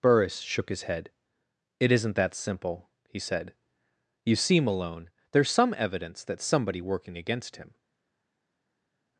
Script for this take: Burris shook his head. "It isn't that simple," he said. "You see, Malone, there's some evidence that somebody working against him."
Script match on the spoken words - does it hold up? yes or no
yes